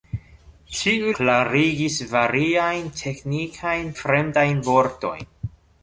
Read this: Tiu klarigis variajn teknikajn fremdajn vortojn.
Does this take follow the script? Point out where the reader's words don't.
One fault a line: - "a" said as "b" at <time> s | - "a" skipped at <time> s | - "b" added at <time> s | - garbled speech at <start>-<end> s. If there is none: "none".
none